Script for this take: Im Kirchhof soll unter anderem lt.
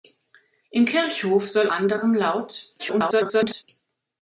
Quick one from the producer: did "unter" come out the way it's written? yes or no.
no